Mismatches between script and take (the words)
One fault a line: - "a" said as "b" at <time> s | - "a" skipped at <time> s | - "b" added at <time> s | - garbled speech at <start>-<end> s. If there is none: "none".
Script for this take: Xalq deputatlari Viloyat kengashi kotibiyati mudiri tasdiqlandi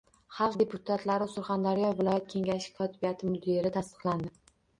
- "Surxondaryo" added at 1.4 s